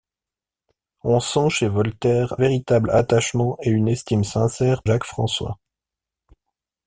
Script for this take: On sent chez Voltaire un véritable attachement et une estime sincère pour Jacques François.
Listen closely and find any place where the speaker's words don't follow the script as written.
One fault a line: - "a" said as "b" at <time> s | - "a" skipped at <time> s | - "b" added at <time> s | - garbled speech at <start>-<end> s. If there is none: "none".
- "un" skipped at 2.4 s
- "pour" skipped at 4.8 s